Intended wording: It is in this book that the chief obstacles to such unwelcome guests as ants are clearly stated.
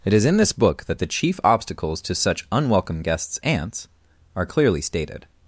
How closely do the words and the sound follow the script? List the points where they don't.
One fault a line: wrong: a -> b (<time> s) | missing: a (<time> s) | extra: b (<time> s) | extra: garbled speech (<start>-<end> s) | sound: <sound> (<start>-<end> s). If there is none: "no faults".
missing: as (3.4 s)